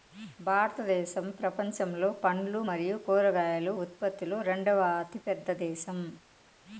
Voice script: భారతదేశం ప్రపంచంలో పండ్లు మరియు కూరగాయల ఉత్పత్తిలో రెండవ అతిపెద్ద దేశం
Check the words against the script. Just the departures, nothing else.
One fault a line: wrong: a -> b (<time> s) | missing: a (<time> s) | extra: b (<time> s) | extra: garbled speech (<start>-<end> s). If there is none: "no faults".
no faults